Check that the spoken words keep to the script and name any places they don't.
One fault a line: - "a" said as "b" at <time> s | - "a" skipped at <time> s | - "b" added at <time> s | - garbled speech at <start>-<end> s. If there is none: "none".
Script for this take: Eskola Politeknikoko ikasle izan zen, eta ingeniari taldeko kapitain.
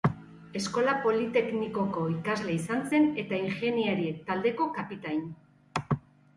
none